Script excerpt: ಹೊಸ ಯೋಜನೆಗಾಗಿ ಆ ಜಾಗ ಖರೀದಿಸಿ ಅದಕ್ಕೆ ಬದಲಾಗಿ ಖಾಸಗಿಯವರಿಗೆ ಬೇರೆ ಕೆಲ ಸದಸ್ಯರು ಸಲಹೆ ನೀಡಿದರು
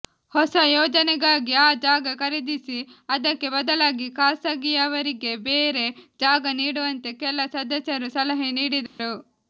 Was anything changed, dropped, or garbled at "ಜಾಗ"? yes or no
no